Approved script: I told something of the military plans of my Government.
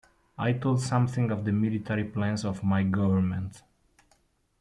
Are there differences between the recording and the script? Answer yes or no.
no